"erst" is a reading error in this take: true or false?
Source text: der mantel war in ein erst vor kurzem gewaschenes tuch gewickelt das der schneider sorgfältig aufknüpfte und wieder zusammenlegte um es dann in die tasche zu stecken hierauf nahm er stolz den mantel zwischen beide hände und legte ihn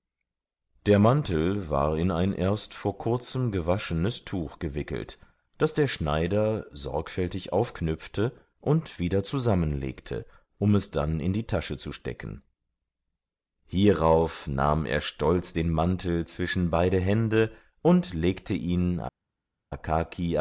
false